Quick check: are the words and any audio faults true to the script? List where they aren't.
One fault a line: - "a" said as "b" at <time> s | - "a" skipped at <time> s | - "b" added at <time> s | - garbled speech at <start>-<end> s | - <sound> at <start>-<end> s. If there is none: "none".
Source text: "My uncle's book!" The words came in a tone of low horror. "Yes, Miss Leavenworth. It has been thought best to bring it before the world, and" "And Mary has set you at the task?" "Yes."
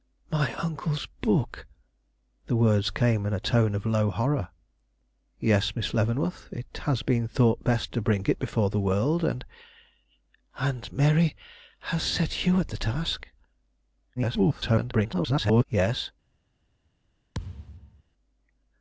- garbled speech at 14.2-15.6 s
- thud at 17.3-18.0 s